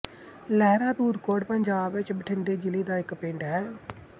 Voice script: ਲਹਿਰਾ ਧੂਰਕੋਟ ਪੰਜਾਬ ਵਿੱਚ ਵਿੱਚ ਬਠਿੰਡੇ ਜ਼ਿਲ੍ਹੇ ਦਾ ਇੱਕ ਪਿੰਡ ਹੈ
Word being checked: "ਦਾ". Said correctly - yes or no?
yes